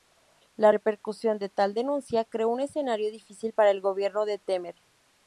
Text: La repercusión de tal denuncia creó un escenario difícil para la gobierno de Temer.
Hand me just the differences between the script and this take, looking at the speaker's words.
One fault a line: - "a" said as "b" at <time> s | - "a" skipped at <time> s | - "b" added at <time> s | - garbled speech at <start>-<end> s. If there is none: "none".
- "la" said as "el" at 3.7 s